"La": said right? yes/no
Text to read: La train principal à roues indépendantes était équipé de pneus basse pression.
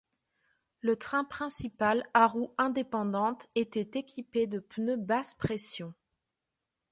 no